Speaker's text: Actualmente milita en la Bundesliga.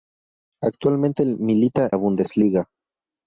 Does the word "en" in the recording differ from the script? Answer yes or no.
yes